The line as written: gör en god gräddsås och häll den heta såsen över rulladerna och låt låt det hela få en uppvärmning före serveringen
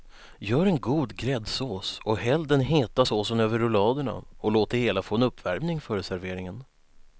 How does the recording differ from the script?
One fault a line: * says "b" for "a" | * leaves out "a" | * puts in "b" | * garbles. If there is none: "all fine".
* leaves out "låt"